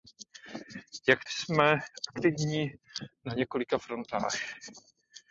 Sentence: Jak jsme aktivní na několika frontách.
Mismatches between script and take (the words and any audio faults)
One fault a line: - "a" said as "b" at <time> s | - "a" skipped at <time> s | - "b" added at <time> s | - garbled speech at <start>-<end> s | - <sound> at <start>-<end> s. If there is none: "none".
none